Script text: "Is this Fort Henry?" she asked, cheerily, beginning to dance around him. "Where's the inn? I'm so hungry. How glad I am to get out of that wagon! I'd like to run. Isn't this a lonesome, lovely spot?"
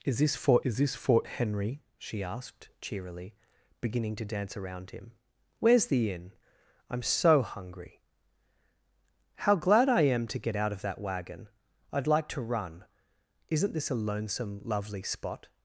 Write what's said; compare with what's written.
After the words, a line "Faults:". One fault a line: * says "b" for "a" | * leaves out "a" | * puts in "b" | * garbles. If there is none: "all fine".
"Is this Fort is this Fort Henry?" she asked, cheerily, beginning to dance around him. "Where's the inn? I'm so hungry. How glad I am to get out of that wagon! I'd like to run. Isn't this a lonesome, lovely spot?"
Faults:
* puts in "is this Fort"